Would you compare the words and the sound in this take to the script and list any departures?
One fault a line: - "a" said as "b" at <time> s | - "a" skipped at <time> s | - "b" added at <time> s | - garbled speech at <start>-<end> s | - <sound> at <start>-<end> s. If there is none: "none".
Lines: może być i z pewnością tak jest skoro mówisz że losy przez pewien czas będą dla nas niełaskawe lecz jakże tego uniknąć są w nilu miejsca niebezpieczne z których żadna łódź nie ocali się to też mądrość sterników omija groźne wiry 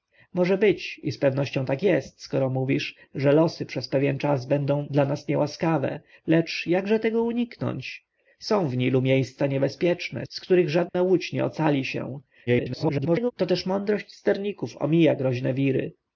- dropout at 10.9-10.9 s
- garbled speech at 12.5-13.3 s